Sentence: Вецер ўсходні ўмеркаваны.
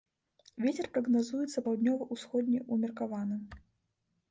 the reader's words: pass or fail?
fail